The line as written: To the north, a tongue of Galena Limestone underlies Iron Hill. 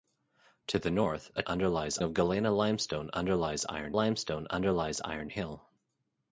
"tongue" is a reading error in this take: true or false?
true